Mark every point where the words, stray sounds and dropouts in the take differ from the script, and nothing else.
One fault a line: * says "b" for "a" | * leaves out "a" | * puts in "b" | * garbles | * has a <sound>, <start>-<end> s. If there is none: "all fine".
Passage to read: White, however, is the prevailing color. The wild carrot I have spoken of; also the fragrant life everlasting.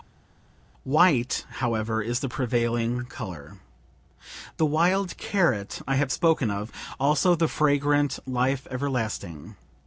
all fine